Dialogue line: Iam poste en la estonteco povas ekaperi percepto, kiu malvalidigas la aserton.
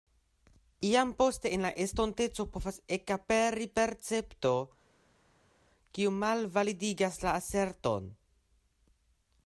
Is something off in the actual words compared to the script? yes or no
no